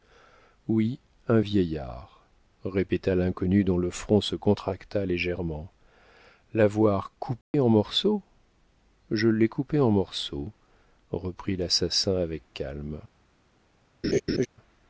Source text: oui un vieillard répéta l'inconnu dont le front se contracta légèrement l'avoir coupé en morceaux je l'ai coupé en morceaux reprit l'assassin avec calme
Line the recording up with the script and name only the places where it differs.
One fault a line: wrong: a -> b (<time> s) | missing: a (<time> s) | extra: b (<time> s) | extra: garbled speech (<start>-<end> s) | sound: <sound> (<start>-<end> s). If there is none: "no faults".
sound: dropout (7.4-7.5 s)
sound: laugh (14.0-14.5 s)